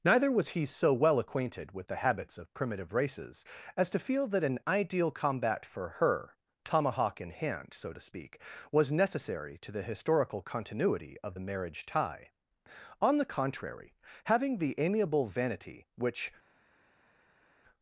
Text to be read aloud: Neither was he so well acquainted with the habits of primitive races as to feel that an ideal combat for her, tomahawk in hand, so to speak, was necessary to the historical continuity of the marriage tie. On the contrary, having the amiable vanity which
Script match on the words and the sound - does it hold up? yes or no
yes